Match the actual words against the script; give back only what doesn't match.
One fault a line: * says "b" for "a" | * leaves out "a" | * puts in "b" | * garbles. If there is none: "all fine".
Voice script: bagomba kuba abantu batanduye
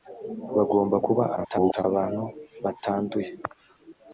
* garbles